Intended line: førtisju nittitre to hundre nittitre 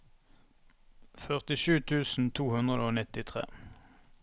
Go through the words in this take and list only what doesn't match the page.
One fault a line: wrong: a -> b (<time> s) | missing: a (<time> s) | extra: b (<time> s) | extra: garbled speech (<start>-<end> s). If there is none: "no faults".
wrong: nittitre -> tusen (1.9 s)
extra: og (2.9 s)